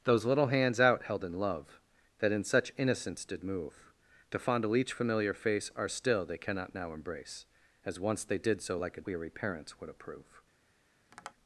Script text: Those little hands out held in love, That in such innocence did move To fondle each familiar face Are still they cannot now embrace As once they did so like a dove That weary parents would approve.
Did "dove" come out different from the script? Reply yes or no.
yes